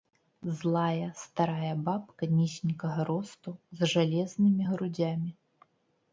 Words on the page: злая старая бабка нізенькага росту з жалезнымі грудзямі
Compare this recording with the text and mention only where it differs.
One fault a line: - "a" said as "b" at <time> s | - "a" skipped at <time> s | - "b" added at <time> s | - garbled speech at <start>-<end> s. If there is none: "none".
none